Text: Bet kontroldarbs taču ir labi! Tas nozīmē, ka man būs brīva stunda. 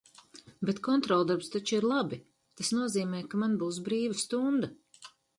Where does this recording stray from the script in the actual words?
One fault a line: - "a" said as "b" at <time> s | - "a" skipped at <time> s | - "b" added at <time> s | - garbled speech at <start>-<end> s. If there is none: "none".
none